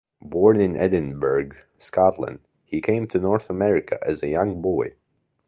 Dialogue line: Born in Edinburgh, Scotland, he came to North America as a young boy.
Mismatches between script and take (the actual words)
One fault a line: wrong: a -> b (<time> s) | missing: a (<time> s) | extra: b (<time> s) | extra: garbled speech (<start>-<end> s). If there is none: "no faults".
no faults